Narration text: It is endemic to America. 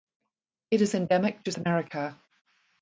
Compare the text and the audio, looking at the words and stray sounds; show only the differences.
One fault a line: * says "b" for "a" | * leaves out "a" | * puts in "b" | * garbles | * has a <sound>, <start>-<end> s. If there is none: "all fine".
all fine